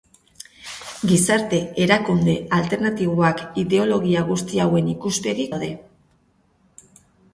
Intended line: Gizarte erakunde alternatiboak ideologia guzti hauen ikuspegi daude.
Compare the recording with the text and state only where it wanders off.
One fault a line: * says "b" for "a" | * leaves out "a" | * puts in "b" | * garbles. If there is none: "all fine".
all fine